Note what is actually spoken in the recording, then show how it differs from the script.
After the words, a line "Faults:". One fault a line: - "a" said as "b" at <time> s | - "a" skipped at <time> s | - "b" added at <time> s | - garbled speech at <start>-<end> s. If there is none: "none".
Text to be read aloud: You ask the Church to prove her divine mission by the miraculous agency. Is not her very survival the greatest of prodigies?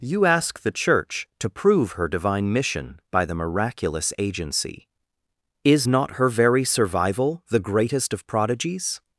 You ask the Church to prove her divine mission by the miraculous agency. Is not her very survival the greatest of prodigies?
Faults:
none